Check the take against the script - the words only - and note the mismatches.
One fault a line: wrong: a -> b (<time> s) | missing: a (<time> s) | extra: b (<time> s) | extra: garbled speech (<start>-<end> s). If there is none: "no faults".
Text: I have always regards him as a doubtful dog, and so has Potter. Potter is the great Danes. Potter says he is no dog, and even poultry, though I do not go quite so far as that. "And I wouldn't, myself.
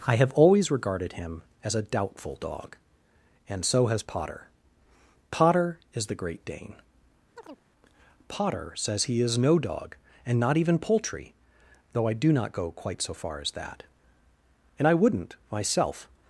wrong: regards -> regarded (0.7 s)
wrong: Danes -> Dane (6.4 s)
extra: not (10.4 s)